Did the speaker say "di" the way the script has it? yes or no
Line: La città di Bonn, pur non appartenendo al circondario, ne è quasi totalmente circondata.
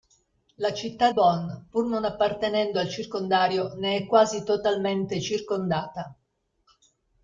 no